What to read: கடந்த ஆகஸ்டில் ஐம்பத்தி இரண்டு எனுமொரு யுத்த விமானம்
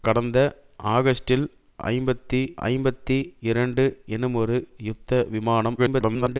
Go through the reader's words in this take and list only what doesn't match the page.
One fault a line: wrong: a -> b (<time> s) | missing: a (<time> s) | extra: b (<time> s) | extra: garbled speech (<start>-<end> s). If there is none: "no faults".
extra: ஐம்பத்தி (2.7 s)
extra: garbled speech (5.8-6.4 s)